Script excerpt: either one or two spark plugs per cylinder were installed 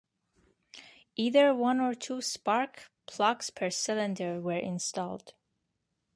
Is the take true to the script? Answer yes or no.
yes